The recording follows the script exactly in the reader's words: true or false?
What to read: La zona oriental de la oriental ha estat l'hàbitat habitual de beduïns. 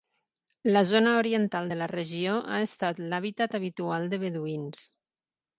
false